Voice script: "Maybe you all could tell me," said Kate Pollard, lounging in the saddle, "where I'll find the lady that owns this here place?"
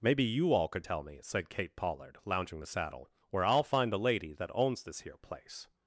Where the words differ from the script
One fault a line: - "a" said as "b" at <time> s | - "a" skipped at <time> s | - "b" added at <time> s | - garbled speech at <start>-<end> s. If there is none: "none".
- "in" skipped at 2.6 s